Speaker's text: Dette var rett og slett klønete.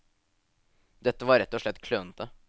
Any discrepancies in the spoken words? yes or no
no